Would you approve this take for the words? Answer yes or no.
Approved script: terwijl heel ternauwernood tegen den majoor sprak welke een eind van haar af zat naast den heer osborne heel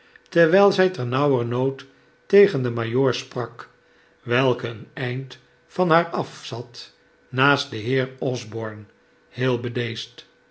no